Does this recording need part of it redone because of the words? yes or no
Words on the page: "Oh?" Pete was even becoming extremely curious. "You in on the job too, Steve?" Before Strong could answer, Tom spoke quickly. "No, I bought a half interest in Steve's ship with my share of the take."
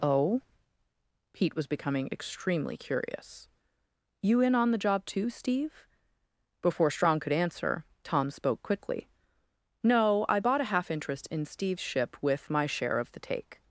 yes